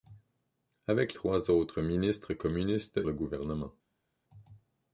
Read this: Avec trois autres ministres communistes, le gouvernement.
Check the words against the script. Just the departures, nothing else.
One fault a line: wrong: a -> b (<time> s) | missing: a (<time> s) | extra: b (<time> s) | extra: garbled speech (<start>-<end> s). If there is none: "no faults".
no faults